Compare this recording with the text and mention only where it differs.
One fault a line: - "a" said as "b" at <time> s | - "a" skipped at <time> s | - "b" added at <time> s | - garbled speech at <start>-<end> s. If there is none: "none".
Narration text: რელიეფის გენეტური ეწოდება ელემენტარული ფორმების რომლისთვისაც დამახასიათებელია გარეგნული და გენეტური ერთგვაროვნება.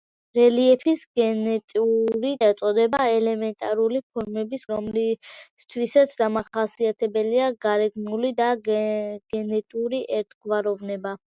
none